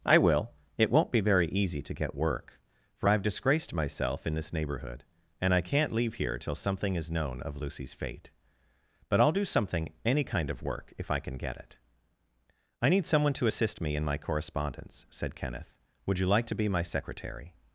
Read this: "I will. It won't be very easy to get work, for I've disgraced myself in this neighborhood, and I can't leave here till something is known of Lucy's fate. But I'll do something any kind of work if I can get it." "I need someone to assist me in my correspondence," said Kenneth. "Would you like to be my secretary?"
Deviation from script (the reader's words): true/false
false